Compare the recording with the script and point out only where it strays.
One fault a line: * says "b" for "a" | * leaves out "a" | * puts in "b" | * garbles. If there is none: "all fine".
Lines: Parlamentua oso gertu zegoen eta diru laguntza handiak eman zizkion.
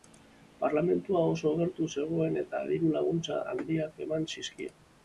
all fine